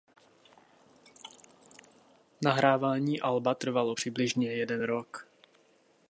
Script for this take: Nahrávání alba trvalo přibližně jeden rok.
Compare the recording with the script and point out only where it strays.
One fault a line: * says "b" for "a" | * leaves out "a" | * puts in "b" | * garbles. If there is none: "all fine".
all fine